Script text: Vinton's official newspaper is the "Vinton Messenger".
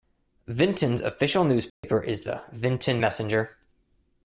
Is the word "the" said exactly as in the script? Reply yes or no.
yes